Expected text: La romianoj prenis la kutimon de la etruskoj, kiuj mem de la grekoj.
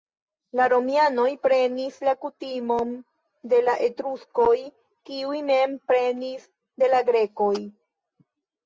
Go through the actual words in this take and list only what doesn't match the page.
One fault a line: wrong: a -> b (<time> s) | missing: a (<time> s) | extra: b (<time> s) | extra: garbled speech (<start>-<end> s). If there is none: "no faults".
extra: prenis (5.9 s)